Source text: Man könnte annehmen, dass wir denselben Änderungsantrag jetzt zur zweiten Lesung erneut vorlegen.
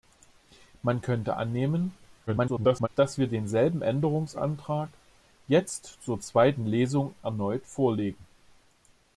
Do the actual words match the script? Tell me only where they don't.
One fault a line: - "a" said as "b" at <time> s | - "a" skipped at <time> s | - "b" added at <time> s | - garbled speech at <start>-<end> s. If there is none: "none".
- garbled speech at 2.3-2.9 s